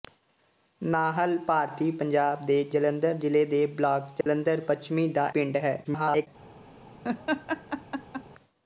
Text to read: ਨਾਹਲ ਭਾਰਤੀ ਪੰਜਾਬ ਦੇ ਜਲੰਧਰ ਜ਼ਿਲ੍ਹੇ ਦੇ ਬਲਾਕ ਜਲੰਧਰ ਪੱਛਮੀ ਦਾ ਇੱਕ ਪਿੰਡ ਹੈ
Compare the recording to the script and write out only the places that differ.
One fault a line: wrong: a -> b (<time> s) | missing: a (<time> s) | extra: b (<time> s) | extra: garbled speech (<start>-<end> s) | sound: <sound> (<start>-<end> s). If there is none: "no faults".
sound: dropout (4.2-4.3 s)
missing: ਇੱਕ (5.3 s)
extra: garbled speech (5.8-6.3 s)
sound: laugh (7.0-8.2 s)